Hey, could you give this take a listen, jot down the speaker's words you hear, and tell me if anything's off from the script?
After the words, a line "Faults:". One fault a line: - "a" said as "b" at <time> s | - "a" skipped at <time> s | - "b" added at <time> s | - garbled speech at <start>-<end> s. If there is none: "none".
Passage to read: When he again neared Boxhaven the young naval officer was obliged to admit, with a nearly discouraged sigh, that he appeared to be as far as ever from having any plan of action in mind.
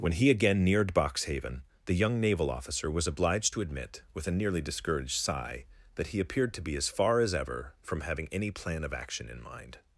When he again neared Boxhaven the young naval officer was obliged to admit, with a nearly discouraged sigh, that he appeared to be as far as ever from having any plan of action in mind.
Faults:
none